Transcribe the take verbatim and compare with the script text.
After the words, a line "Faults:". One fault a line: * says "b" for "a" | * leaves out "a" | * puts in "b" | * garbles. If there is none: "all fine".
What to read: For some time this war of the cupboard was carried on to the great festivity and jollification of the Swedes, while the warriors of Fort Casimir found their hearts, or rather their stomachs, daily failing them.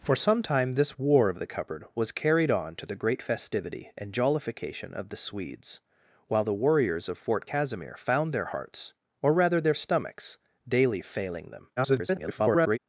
For some time this war of the cupboard was carried on to the great festivity and jollification of the Swedes, while the warriors of Fort Casimir found their hearts, or rather their stomachs, daily failing them. [garbled]
Faults:
* garbles